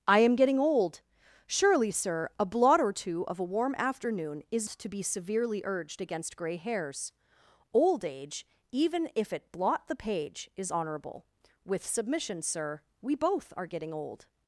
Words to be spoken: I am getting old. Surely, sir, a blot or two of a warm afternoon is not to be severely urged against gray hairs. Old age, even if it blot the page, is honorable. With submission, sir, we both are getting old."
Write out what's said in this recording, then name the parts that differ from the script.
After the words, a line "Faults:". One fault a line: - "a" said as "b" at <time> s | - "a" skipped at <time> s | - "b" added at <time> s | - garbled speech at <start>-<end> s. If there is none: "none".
I am getting old. Surely, sir, a blot or two of a warm afternoon is to be severely urged against gray hairs. Old age, even if it blot the page, is honorable. With submission, sir, we both are getting old."
Faults:
- "not" skipped at 4.7 s